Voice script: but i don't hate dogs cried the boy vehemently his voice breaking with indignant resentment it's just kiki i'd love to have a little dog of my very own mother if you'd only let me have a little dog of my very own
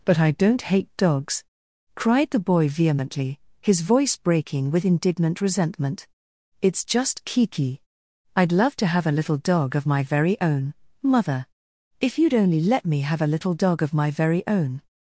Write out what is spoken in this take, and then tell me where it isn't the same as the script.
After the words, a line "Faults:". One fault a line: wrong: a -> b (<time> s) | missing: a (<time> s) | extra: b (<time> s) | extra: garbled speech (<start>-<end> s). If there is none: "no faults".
but i don't hate dogs cried the boy vehemently his voice breaking with indignant resentment it's just kiki i'd love to have a little dog of my very own mother if you'd only let me have a little dog of my very own
Faults:
no faults